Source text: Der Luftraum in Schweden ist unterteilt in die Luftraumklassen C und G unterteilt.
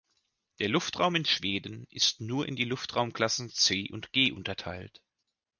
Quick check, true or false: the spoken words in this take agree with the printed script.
false